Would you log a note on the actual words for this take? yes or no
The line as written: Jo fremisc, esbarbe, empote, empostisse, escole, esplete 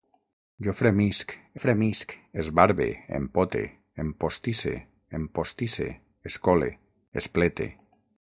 yes